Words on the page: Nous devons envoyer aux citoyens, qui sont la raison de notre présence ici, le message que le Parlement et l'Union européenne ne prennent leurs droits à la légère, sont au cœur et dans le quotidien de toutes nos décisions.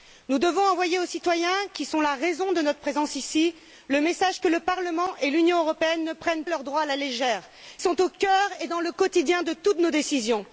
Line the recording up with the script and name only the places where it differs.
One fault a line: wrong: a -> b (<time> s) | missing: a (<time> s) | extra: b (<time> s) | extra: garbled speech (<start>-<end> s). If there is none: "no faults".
no faults